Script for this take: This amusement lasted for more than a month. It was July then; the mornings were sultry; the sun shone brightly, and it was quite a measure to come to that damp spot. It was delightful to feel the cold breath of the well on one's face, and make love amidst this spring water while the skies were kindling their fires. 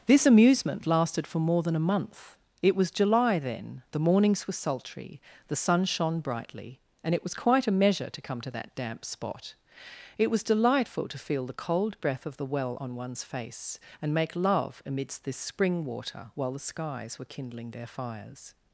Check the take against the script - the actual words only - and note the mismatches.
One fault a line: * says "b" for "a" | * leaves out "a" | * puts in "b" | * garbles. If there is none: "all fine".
all fine